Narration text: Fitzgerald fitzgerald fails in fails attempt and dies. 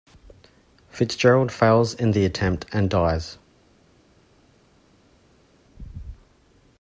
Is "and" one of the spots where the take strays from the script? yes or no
no